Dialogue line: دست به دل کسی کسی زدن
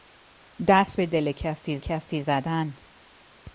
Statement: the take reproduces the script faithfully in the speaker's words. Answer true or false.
true